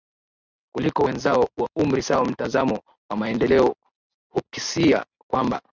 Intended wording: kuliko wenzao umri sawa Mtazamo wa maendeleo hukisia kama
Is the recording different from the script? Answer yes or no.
yes